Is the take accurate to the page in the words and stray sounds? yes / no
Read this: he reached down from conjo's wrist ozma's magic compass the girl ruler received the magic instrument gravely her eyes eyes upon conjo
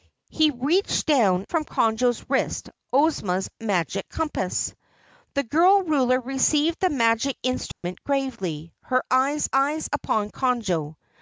no